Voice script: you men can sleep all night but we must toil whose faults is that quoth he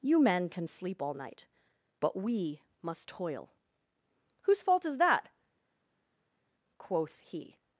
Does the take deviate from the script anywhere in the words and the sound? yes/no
yes